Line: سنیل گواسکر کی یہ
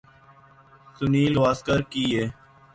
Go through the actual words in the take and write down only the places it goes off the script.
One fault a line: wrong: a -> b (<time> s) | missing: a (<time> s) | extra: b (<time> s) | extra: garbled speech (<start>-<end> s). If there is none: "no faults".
no faults